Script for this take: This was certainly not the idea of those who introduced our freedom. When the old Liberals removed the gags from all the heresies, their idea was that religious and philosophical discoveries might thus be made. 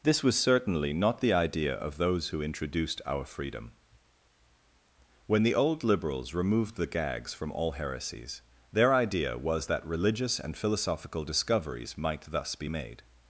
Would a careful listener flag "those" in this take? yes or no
no